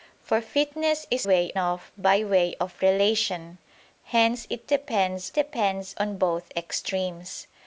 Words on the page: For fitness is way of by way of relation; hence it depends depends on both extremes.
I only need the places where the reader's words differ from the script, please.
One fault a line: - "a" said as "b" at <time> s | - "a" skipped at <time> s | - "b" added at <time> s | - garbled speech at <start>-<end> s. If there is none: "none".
none